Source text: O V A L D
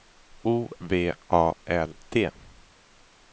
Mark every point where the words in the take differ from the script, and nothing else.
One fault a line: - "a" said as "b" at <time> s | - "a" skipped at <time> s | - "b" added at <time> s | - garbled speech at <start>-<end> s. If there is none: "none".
none